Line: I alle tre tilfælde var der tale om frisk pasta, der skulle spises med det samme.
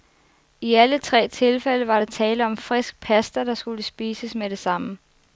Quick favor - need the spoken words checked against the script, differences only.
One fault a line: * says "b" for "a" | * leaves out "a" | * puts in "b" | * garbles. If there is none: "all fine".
all fine